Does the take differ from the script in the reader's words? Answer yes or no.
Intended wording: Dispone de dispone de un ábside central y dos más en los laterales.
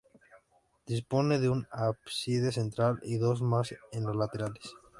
yes